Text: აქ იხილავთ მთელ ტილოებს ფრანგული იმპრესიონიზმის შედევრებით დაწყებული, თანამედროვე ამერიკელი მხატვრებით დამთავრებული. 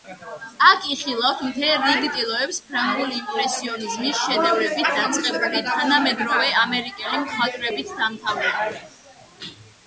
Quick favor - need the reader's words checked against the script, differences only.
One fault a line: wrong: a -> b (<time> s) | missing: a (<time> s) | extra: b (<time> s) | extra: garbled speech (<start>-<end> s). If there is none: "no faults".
extra: რიგ (1.9 s)